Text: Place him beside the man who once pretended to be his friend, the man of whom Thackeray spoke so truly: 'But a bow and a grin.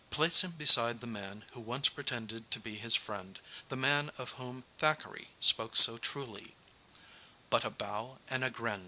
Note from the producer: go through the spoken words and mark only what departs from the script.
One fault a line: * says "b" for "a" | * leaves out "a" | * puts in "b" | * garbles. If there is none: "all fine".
all fine